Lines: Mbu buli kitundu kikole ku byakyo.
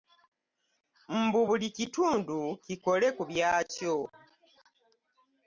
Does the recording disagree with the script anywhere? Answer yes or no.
no